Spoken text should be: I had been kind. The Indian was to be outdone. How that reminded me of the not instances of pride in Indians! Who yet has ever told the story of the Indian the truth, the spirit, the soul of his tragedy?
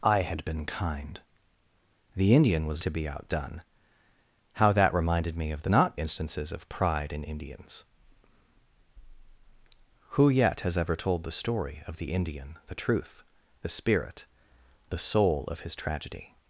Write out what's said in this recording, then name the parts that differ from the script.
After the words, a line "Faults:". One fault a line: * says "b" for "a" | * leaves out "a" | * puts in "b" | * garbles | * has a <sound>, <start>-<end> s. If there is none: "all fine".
I had been kind. The Indian was to be outdone. How that reminded me of the not instances of pride in Indians! Who yet has ever told the story of the Indian the truth, the spirit, the soul of his tragedy?
Faults:
all fine